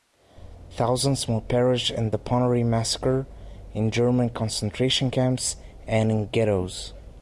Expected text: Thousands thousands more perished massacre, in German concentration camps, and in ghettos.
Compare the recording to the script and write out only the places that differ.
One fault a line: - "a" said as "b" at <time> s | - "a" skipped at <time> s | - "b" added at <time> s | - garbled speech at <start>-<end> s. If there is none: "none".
- "thousands" skipped at 1.3 s
- "in the Ponary" added at 1.9 s